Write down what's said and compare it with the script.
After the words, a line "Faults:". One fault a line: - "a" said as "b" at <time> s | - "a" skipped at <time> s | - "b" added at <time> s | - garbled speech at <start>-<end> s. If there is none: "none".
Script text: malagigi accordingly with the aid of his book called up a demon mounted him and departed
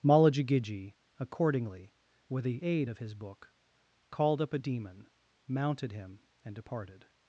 malagigi accordingly with the aid of his book called up a demon mounted him and departed
Faults:
none